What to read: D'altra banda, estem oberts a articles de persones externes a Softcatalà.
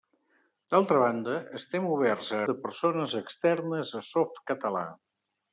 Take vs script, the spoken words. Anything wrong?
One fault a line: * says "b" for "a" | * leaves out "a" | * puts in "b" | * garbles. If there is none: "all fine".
* leaves out "articles"